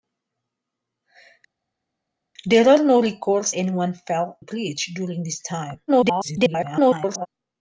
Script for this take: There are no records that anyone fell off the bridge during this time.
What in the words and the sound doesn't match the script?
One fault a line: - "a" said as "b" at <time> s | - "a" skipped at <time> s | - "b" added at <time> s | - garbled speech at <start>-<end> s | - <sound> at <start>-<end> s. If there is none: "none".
- "that" skipped at 3.5 s
- "off the" skipped at 4.4 s
- garbled speech at 5.9-7.3 s